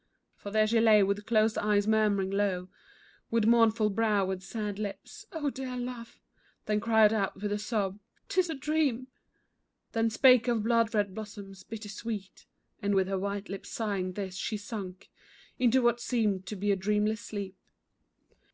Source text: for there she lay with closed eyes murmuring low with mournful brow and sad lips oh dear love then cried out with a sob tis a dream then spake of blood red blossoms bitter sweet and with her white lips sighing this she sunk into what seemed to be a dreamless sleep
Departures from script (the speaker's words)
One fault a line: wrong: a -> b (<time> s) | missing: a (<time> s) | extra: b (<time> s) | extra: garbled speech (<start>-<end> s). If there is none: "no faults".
no faults